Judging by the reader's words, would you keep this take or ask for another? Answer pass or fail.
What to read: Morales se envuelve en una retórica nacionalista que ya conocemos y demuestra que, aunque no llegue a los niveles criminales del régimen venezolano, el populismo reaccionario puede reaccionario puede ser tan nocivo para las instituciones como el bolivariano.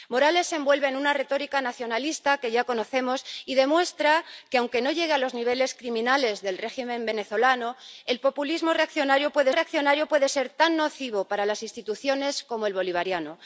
pass